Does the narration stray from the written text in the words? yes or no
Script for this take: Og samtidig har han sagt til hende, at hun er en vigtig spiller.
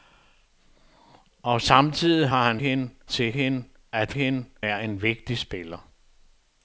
yes